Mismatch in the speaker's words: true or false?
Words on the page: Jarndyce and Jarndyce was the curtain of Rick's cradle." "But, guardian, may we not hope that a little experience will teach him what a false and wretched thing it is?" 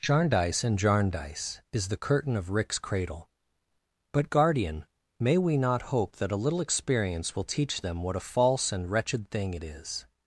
true